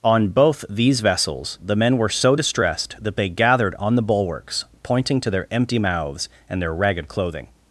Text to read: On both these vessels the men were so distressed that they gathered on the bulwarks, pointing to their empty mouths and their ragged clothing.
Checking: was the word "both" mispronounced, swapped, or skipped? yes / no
no